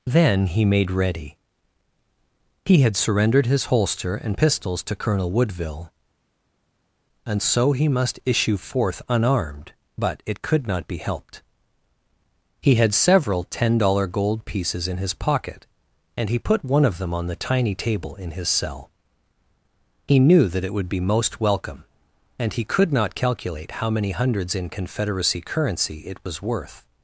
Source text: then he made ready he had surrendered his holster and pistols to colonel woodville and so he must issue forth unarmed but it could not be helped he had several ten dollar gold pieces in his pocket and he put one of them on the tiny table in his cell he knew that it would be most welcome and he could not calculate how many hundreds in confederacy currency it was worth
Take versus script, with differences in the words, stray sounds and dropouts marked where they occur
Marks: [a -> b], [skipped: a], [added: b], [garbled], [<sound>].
then he made ready he had surrendered his holster and pistols to colonel woodville and so he must issue forth unarmed but it could not be helped he had several ten dollar gold pieces in his pocket and he put one of them on the tiny table in his cell he knew that it would be most welcome and he could not calculate how many hundreds in confederacy currency it was worth